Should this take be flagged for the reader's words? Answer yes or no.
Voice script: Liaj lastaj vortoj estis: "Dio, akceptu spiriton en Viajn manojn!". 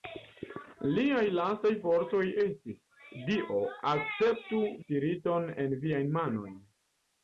no